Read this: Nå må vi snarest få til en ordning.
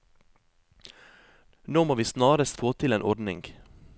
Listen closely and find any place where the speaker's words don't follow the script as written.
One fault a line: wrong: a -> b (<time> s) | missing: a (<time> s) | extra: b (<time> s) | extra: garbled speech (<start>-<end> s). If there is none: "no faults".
no faults